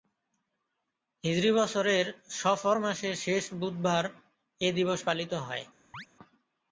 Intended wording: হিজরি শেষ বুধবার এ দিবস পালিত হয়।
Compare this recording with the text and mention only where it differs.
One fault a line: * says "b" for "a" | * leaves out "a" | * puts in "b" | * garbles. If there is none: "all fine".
* puts in "বছরের সফর মাসের"